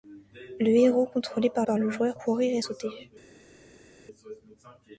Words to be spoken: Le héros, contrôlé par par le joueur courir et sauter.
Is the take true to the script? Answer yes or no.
yes